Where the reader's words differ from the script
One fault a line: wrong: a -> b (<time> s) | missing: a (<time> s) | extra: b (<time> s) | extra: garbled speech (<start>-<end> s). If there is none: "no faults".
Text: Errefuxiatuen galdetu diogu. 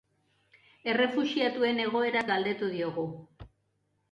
extra: egoeraz (1.8 s)